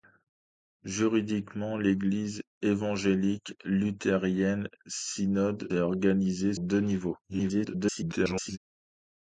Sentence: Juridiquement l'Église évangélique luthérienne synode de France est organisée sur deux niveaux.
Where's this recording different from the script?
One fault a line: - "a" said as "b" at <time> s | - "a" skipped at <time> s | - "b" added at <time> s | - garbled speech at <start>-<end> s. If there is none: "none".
- "de France" skipped at 5.7 s
- "sur" skipped at 6.6 s
- garbled speech at 7.2-8.6 s